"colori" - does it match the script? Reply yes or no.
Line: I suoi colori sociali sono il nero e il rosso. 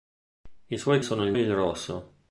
no